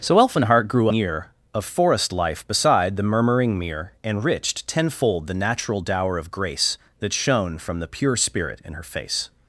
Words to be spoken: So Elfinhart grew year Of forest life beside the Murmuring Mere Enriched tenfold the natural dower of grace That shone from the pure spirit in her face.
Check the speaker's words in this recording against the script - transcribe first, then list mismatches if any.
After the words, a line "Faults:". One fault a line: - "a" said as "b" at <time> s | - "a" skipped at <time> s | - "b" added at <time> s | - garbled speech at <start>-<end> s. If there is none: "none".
So Elfinhart grew year Of forest life beside the Murmuring Mere Enriched tenfold the natural dower of grace That shone from the pure spirit in her face.
Faults:
none